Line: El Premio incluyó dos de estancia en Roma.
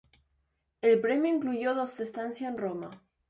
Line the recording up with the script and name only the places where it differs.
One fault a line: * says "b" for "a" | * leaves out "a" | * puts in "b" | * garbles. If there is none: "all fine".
all fine